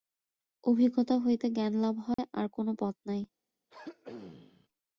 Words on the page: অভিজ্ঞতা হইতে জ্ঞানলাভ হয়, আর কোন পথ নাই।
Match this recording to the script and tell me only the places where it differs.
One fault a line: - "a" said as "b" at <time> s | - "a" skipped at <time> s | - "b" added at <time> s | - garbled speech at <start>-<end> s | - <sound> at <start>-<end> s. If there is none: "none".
- dropout at 2.1-2.2 s
- throat clearing at 3.7-4.7 s